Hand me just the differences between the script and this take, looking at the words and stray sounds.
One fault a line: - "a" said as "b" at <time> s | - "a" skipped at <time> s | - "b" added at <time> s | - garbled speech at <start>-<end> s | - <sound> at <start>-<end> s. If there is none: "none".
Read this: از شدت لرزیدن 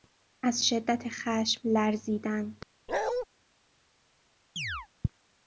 - "خشم" added at 1.1 s
- bark at 2.9-3.3 s
- chirp at 4.6-4.9 s